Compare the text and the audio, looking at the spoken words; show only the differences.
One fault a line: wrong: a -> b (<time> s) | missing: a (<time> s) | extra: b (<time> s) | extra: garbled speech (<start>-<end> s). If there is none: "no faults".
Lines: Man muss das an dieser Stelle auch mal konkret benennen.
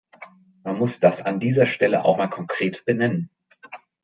no faults